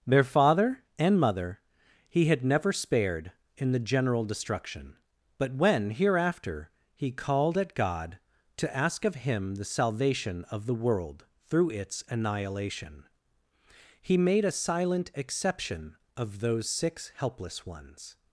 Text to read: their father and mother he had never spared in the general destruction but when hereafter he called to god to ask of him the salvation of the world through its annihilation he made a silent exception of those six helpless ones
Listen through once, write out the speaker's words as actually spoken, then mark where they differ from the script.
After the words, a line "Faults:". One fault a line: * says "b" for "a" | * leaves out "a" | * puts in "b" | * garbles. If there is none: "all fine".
their father and mother he had never spared in the general destruction but when hereafter he called at god to ask of him the salvation of the world through its annihilation he made a silent exception of those six helpless ones
Faults:
* says "at" for "to"